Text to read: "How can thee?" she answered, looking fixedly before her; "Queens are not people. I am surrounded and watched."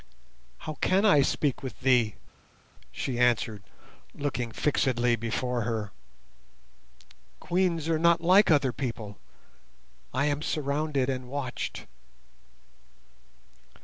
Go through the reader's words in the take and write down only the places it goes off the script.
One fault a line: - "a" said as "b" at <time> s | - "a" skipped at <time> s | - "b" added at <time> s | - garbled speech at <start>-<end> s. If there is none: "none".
- "I speak with" added at 1.1 s
- "like other" added at 8.2 s